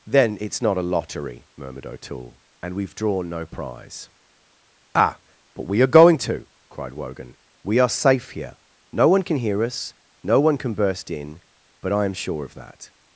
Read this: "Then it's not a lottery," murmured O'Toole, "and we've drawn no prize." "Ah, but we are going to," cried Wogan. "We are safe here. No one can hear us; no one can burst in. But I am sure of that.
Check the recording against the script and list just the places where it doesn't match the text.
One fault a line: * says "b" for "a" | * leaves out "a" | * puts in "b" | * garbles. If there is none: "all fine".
all fine